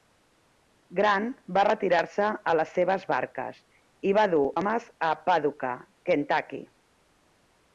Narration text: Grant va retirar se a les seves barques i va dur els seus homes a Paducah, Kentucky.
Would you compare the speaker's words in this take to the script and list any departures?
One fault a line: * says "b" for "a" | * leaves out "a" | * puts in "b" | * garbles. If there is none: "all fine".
* leaves out "els seus"